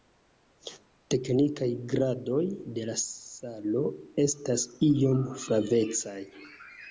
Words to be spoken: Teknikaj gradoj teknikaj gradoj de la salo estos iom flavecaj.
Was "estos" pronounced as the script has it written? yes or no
no